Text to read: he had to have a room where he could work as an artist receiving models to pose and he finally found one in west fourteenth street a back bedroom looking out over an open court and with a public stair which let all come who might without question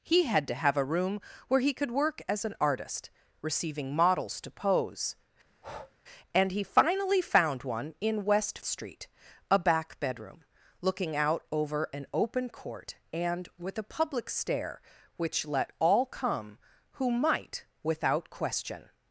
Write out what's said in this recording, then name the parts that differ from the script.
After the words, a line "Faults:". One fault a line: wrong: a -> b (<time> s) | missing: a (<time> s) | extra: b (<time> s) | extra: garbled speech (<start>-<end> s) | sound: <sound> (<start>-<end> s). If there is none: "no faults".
he had to have a room where he could work as an artist receiving models to pose and he finally found one in west street a back bedroom looking out over an open court and with a public stair which let all come who might without question
Faults:
sound: breath (5.5-6.0 s)
missing: fourteenth (8.6 s)